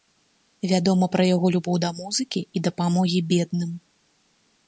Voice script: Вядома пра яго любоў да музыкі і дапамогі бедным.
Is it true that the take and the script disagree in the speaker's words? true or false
false